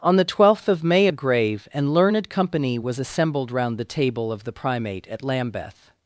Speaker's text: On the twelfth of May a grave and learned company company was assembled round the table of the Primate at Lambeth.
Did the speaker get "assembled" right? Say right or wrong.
right